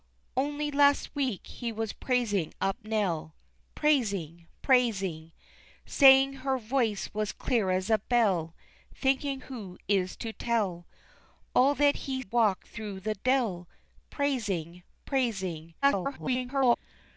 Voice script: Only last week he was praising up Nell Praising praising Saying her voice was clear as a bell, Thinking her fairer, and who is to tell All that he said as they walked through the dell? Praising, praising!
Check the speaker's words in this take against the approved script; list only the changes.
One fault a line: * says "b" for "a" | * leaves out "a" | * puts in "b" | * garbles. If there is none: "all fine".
* leaves out "her fairer and"
* leaves out "said as they"
* garbles